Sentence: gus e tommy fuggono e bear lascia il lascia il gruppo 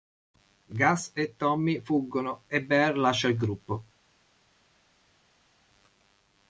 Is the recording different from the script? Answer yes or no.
yes